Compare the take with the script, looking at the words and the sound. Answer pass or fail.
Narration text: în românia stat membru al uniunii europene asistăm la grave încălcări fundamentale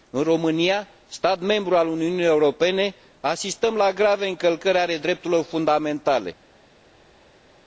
fail